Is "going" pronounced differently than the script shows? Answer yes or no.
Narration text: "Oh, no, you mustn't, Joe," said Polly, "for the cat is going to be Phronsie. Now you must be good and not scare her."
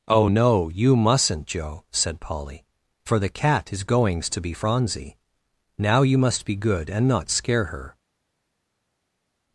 yes